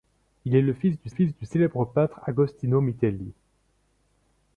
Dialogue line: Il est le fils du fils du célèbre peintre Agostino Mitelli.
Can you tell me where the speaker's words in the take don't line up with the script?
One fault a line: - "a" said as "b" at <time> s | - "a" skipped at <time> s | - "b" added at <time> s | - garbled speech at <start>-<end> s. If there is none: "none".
none